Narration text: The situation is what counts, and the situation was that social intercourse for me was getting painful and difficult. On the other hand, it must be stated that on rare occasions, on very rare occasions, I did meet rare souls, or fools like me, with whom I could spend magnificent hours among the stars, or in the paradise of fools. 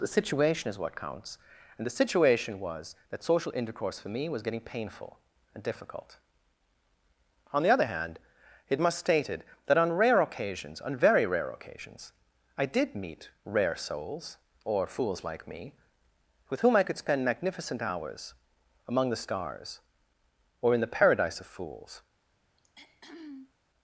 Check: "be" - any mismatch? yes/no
yes